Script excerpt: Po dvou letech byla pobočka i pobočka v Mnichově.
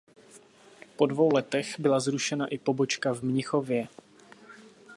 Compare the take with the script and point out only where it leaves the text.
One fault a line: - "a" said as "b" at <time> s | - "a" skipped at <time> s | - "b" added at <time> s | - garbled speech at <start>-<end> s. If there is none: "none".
- "pobočka" said as "zrušena" at 2.0 s